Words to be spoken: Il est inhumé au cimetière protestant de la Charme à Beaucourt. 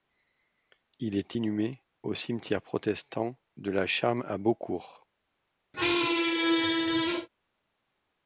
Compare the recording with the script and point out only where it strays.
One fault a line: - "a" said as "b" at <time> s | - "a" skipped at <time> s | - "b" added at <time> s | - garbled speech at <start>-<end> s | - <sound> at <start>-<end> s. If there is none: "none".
- squeak at 5.7-7.3 s